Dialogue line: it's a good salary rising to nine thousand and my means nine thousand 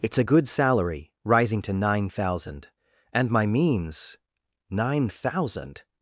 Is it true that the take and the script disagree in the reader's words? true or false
false